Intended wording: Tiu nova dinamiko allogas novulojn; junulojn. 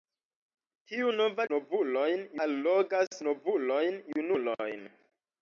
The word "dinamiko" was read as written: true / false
false